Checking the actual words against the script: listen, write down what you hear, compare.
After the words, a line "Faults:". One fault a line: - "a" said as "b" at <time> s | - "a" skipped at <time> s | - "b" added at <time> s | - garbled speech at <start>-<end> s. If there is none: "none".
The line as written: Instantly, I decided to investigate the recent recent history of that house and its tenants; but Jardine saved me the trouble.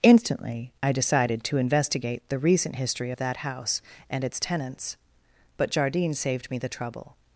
Instantly, I decided to investigate the recent history of that house and its tenants; but Jardine saved me the trouble.
Faults:
- "recent" skipped at 2.8 s